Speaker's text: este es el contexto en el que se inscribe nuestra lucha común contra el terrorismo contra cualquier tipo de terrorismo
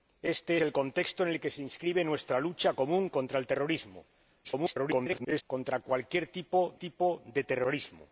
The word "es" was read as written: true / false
false